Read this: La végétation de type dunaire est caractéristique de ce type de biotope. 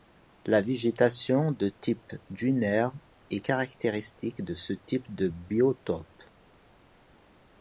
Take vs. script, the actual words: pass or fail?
pass